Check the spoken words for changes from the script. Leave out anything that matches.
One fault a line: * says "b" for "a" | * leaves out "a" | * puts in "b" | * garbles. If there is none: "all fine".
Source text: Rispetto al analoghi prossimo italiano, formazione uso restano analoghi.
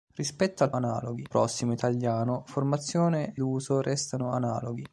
all fine